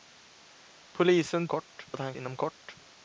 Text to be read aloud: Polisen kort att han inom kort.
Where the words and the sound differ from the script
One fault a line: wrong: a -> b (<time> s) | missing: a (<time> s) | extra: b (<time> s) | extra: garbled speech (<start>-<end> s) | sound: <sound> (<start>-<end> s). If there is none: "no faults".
no faults